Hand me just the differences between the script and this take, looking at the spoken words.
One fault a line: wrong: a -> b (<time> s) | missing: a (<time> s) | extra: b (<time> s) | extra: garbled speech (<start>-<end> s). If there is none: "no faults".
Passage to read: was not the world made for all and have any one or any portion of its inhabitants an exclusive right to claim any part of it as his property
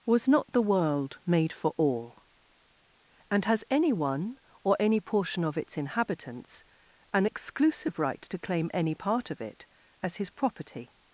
wrong: have -> has (3.5 s)